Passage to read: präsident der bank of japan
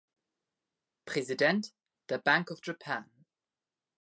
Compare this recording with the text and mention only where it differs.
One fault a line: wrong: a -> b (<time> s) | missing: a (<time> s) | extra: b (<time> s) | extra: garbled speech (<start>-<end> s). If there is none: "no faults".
no faults